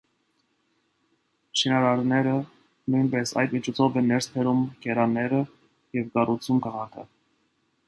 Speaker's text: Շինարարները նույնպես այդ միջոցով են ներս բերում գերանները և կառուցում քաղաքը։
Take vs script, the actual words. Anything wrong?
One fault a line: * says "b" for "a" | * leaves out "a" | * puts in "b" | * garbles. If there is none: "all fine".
all fine